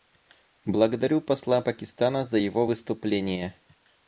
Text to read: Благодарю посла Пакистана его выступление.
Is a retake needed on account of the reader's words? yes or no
yes